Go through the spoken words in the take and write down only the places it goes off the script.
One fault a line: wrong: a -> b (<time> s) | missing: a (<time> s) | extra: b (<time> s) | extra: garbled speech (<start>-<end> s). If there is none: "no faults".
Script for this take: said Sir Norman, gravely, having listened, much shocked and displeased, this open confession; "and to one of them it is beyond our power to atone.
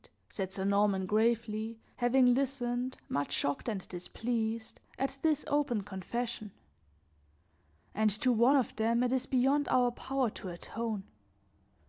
extra: at (5.0 s)